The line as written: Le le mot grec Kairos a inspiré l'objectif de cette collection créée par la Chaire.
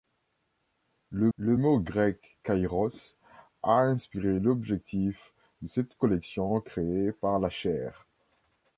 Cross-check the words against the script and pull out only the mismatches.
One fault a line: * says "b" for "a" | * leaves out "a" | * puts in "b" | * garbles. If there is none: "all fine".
all fine